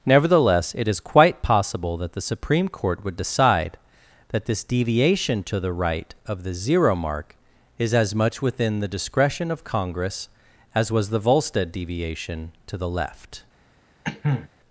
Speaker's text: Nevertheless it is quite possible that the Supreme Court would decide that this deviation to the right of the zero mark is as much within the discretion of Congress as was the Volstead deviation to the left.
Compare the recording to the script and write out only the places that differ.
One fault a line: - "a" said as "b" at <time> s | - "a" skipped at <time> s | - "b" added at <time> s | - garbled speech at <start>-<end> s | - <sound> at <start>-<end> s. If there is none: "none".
- cough at 14.0-14.5 s